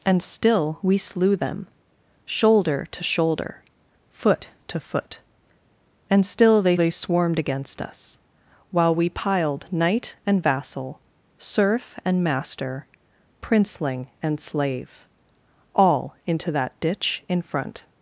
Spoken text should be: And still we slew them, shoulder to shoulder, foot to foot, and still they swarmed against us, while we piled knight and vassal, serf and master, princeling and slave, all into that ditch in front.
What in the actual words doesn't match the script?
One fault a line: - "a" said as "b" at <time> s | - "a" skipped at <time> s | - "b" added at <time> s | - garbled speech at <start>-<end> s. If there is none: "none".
- "they" added at 6.7 s